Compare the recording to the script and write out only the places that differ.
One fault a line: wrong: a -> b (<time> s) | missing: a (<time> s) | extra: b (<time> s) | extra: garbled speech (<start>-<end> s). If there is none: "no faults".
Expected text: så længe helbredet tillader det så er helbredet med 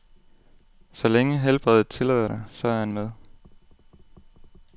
wrong: helbredet -> han (2.8 s)